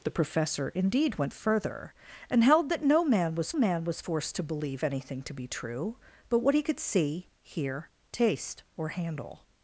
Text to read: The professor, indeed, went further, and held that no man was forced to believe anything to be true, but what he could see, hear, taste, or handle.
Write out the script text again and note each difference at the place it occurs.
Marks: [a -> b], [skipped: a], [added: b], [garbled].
The professor, indeed, went further, and held that no man was [added: man was] forced to believe anything to be true, but what he could see, hear, taste, or handle.